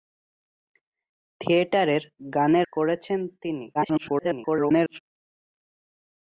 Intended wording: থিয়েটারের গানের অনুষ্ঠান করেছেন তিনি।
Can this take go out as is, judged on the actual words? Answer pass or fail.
fail